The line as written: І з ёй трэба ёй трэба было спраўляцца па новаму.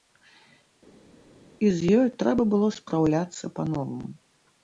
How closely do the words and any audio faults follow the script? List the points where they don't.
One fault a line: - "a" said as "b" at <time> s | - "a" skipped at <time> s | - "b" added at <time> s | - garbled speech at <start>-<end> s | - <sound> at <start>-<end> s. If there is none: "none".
- "ёй трэба" skipped at 2.5 s